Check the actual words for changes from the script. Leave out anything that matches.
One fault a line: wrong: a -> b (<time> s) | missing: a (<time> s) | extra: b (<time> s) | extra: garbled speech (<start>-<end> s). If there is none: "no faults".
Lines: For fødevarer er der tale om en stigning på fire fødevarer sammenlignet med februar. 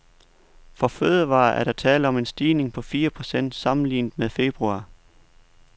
wrong: fødevarer -> procent (3.1 s)